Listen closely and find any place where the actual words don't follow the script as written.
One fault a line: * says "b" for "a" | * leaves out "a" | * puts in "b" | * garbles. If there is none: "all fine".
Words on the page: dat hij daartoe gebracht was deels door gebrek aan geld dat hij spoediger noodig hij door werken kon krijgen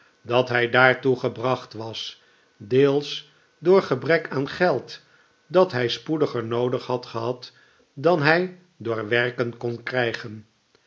* puts in "had gehad dan"